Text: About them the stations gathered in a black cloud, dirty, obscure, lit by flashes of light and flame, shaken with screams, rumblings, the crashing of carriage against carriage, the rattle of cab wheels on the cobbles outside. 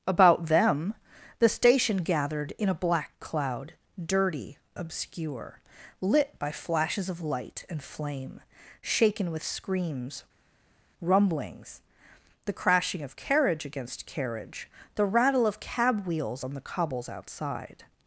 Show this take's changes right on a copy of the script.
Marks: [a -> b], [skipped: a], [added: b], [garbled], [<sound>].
About them the [stations -> station] gathered in a black cloud, dirty, obscure, lit by flashes of light and flame, shaken with screams, rumblings, the crashing of carriage against carriage, the rattle of cab wheels on the cobbles outside.